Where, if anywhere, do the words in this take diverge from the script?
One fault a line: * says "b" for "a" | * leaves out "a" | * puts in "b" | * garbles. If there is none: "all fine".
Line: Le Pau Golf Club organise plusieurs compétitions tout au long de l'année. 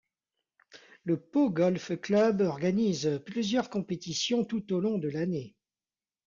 all fine